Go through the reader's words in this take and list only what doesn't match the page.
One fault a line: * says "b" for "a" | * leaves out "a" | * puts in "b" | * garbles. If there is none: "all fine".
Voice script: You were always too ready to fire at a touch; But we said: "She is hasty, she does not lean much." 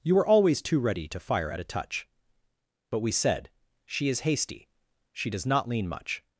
all fine